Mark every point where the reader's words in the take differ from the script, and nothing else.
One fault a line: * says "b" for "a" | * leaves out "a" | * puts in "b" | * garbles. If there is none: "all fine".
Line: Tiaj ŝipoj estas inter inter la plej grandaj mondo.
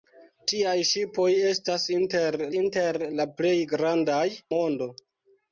all fine